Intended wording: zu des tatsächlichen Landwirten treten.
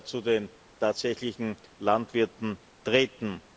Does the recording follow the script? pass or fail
fail